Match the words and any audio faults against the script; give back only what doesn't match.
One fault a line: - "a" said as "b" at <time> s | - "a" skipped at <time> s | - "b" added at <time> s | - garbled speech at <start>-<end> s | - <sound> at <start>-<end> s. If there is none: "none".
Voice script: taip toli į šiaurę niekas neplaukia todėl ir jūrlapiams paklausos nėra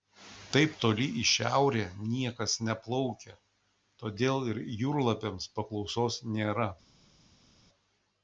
none